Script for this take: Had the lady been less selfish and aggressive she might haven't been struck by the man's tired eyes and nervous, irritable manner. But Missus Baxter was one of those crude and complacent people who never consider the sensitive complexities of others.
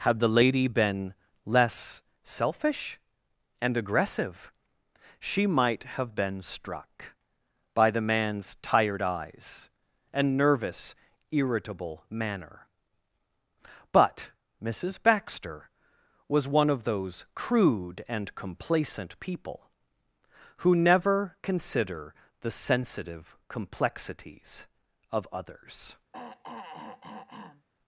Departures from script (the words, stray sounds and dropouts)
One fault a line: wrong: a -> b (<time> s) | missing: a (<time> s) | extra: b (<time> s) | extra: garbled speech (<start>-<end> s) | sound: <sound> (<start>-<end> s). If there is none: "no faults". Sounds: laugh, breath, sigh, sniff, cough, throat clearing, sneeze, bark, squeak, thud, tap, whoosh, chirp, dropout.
wrong: haven't -> have (6.0 s)
sound: throat clearing (26.1-27.7 s)